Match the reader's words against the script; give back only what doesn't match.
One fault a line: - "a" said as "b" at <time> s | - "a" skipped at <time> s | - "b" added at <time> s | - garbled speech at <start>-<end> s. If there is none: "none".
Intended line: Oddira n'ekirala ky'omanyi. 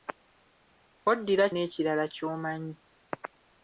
none